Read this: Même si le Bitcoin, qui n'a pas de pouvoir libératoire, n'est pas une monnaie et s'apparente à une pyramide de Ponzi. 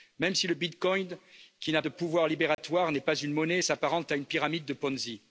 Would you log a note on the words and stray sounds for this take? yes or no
yes